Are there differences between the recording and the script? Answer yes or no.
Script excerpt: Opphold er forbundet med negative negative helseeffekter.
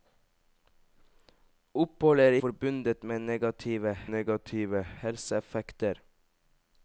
no